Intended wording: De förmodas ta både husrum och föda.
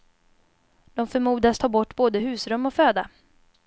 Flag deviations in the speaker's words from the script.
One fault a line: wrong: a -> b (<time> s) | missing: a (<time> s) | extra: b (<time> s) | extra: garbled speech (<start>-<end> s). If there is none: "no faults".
extra: bort (1.7 s)